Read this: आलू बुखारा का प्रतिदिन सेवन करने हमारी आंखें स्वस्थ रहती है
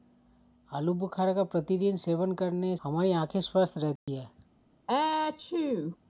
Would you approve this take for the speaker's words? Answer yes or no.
yes